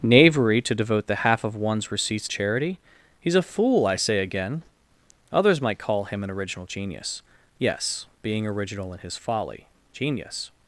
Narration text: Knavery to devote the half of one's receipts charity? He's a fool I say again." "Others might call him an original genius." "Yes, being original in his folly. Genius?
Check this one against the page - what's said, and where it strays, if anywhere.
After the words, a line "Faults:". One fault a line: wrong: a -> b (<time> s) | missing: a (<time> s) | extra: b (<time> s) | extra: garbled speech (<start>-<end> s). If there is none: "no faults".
Knavery to devote the half of one's receipts charity? He's a fool I say again." "Others might call him an original genius." "Yes, being original in his folly. Genius?
Faults:
no faults